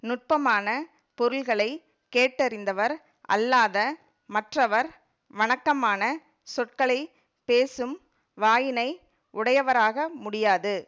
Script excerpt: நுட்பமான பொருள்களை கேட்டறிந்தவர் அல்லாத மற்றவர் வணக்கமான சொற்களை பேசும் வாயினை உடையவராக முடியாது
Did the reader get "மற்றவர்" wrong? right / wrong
right